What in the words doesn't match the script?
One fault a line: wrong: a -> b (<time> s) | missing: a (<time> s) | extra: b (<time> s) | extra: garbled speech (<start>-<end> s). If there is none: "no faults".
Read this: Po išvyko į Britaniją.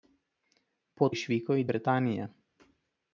no faults